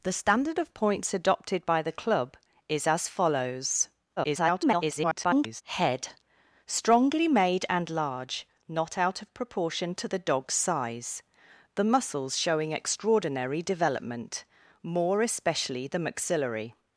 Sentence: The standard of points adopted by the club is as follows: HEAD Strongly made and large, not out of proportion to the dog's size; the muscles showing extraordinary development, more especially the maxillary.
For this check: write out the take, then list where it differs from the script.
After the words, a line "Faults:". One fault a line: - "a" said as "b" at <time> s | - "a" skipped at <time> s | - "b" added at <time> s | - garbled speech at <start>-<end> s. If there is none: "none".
The standard of points adopted by the club is as follows: [garbled] HEAD Strongly made and large, not out of proportion to the dog's size; the muscles showing extraordinary development, more especially the maxillary.
Faults:
- garbled speech at 4.2-5.6 s